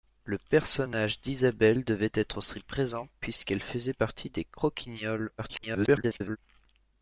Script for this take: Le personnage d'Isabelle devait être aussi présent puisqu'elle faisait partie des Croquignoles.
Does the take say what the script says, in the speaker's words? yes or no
no